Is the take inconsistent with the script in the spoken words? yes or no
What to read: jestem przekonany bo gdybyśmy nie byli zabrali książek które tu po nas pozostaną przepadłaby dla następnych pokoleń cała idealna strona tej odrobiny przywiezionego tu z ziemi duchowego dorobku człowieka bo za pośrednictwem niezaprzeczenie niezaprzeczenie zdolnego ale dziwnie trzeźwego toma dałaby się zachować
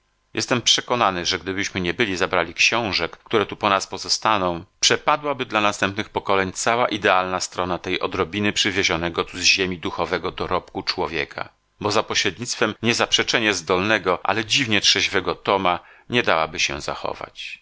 yes